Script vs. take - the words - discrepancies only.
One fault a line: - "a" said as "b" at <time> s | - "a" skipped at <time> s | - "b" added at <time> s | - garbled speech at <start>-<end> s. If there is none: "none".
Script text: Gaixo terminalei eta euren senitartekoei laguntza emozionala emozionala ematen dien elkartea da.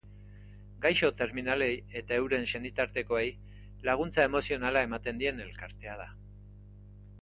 - "emozionala" skipped at 4.9 s